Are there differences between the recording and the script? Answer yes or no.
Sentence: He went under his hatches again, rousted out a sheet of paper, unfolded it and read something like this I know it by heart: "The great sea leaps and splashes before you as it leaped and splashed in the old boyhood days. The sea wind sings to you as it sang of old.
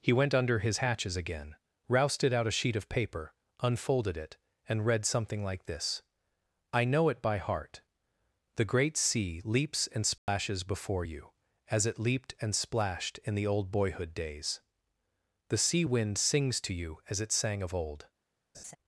no